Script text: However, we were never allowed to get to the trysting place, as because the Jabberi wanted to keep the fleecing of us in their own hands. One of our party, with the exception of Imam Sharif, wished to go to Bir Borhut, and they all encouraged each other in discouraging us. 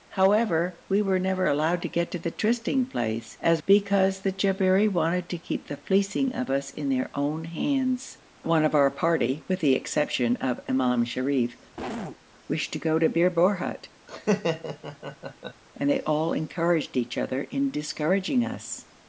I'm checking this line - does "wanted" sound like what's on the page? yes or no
yes